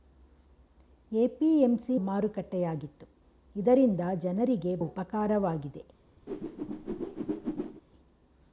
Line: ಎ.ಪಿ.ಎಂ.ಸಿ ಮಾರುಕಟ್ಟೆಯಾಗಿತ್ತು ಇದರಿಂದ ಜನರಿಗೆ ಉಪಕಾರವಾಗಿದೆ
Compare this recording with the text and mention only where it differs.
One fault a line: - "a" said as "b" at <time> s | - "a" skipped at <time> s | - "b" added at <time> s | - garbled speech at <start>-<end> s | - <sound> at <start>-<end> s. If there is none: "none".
- whoosh at 6.3-7.8 s